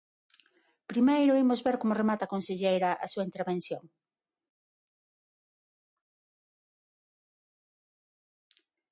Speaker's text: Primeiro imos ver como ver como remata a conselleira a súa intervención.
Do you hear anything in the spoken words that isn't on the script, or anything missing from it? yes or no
yes